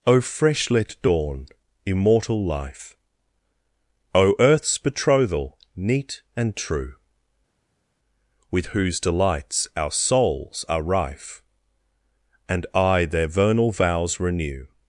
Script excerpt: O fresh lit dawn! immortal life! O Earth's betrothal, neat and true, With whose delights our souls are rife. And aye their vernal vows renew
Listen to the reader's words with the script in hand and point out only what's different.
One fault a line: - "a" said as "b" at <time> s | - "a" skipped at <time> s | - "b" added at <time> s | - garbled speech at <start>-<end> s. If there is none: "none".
none